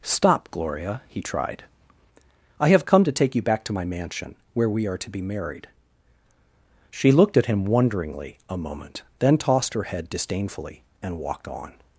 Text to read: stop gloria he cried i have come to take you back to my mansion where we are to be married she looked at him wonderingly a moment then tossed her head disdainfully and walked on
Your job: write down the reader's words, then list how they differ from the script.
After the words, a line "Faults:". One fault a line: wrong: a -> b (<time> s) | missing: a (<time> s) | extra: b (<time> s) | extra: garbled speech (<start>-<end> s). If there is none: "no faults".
stop gloria he tried i have come to take you back to my mansion where we are to be married she looked at him wonderingly a moment then tossed her head disdainfully and walked on
Faults:
wrong: cried -> tried (1.2 s)